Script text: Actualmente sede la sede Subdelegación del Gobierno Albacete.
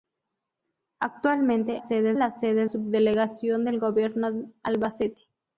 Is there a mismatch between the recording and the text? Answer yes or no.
no